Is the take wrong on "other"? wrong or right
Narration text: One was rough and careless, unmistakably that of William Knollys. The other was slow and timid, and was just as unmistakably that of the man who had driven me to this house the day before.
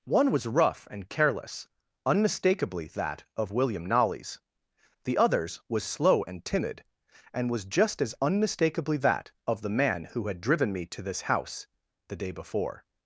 wrong